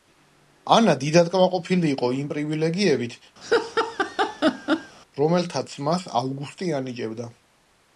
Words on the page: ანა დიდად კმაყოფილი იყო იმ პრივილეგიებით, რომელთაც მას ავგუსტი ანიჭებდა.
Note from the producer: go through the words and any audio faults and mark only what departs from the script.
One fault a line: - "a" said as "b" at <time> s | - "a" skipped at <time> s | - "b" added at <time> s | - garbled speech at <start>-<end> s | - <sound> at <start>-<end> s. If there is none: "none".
- laugh at 3.4-5.0 s